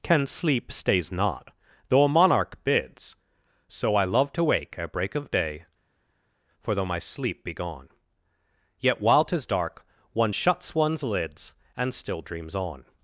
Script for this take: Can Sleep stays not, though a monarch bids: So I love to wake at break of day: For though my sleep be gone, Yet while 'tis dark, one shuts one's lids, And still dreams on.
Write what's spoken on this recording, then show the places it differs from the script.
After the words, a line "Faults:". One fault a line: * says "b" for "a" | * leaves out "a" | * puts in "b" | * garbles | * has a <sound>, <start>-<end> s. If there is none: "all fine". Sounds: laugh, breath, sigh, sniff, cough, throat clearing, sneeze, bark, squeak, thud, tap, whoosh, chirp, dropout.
Can Sleep stays not, though a monarch bids: So I love to wake at break of day: For though my sleep be gone, Yet while 'tis dark, one shuts one's lids, And still dreams on.
Faults:
all fine